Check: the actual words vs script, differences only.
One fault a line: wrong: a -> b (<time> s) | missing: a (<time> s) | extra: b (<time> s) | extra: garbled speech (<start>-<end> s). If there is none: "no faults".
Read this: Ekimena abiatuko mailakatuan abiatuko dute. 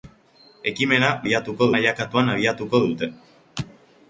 no faults